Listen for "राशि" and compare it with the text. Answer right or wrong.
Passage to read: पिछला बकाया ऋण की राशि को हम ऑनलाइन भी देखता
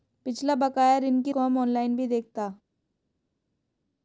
wrong